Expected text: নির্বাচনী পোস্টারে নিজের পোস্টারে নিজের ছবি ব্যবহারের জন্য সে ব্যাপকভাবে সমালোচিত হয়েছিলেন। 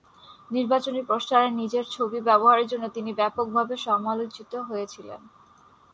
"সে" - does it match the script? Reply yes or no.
no